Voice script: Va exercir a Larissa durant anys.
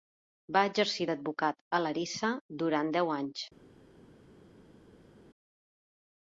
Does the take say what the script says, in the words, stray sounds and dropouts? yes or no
no